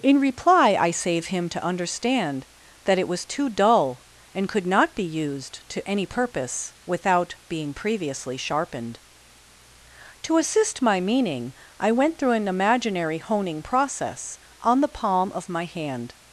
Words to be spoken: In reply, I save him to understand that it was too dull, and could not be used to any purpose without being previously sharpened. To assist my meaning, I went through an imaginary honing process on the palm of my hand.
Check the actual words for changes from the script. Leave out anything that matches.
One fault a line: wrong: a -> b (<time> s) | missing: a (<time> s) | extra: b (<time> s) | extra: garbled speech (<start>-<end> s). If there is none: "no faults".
no faults